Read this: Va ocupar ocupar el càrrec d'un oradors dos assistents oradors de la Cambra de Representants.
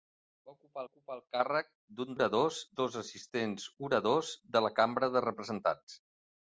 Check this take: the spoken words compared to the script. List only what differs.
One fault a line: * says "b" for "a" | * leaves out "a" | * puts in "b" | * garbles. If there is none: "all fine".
all fine